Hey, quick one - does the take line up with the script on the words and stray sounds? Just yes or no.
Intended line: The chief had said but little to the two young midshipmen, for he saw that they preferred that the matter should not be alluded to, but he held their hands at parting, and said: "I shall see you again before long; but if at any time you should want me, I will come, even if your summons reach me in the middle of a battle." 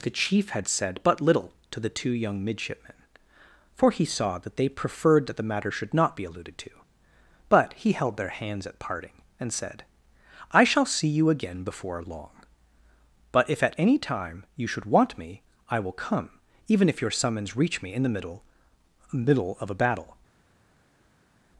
no